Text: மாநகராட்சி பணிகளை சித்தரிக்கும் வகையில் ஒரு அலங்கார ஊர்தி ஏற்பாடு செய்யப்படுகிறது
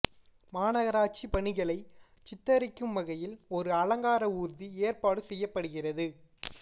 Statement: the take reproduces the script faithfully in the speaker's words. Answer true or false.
true